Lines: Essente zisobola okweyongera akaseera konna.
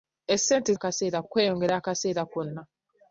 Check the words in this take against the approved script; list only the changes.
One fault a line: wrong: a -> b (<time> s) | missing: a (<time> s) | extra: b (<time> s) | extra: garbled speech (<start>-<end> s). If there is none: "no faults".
wrong: zisobola -> akaseera (0.7 s)